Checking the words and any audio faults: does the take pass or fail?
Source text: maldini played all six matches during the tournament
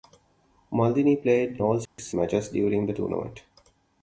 fail